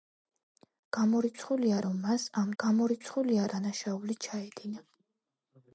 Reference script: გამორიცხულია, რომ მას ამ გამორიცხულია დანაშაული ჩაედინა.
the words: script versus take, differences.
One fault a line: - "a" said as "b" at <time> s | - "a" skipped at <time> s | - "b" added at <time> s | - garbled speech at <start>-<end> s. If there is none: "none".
none